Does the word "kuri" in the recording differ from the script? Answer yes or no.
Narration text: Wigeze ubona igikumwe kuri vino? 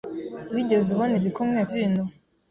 yes